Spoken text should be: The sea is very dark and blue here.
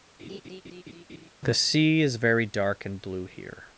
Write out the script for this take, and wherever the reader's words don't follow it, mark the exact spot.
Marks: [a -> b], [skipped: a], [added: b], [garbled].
The sea is very dark and blue here.